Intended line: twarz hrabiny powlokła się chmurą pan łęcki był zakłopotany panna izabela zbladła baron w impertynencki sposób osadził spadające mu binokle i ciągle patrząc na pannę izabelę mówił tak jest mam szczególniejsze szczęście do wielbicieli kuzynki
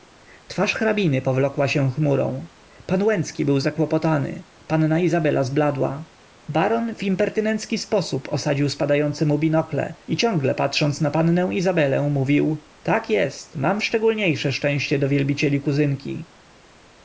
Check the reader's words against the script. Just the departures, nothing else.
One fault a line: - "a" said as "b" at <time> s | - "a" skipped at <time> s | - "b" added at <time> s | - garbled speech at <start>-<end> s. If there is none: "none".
none